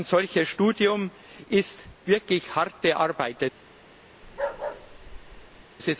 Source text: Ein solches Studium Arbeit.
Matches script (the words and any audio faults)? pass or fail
fail